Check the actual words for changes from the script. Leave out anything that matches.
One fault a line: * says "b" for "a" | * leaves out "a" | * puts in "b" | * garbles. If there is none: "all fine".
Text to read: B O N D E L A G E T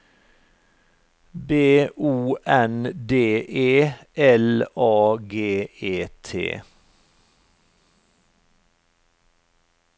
all fine